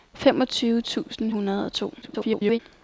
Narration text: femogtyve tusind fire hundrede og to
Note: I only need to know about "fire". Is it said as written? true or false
false